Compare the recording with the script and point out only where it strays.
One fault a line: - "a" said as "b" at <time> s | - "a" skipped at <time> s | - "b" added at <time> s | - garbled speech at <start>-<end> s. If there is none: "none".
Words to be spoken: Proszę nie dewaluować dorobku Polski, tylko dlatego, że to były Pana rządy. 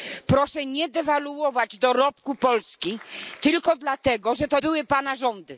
none